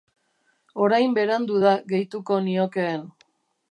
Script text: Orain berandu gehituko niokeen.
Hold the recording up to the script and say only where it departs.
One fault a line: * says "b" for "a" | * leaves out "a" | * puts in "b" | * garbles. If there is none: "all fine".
* puts in "da"